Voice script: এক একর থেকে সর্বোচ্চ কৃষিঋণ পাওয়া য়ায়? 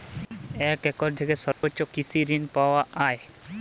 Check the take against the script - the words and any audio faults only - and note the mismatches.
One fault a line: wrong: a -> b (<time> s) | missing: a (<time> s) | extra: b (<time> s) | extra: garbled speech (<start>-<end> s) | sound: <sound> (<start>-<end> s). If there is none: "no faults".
sound: dropout (1.5-1.6 s)